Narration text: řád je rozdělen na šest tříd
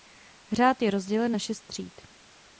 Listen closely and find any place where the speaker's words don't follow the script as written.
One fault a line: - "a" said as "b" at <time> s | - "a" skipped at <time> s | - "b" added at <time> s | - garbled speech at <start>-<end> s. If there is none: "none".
none